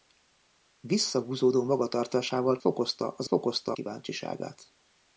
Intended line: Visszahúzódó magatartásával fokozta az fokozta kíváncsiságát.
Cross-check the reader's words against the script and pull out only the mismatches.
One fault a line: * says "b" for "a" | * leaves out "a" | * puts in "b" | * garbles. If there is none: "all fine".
all fine